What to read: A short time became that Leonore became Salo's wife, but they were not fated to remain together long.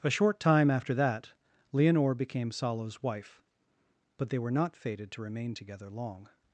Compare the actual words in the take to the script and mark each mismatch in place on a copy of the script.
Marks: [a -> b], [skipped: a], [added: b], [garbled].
A short time [became -> after] that Leonore became Salo's wife, but they were not fated to remain together long.